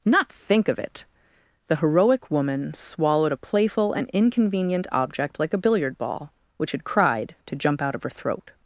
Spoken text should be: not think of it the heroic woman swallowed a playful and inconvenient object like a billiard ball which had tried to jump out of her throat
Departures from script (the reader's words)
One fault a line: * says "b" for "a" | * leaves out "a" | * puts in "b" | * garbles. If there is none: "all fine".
* says "cried" for "tried"